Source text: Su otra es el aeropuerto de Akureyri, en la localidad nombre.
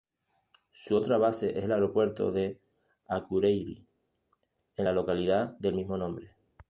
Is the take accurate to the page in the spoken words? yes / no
no